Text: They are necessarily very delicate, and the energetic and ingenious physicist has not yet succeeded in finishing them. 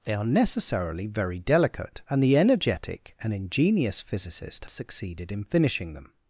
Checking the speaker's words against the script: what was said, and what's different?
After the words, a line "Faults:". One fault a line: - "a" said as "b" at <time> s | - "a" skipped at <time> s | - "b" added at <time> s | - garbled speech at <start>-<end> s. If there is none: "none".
They are necessarily very delicate, and the energetic and ingenious physicist succeeded in finishing them.
Faults:
- "has not yet" skipped at 4.7 s